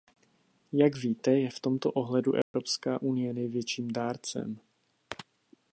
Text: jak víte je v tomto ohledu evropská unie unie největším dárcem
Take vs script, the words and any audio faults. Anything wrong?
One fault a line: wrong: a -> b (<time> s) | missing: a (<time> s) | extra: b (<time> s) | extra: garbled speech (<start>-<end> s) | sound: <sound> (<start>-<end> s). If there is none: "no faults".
sound: dropout (2.4-2.5 s)
missing: unie (3.3 s)